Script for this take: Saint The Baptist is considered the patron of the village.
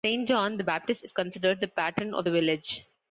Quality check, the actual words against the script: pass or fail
fail